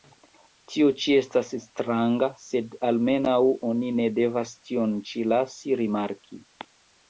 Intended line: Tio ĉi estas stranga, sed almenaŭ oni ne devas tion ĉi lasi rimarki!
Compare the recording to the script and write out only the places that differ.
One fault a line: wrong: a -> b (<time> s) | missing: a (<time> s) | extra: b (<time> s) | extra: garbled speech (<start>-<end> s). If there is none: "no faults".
no faults